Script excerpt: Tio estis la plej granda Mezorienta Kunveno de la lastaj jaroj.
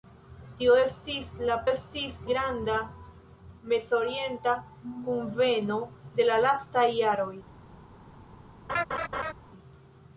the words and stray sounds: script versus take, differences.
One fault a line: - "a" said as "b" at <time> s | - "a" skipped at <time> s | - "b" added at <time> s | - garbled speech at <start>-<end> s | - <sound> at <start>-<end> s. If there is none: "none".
- "plej" said as "estis" at 1.7 s
- laugh at 8.7-9.3 s